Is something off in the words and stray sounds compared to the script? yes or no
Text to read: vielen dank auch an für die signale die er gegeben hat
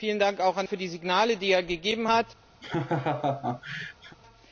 yes